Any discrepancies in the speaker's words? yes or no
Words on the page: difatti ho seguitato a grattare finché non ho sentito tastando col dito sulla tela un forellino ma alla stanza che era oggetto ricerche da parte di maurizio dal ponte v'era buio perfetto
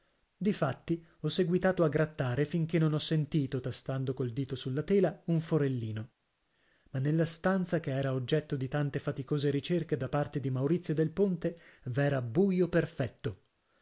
yes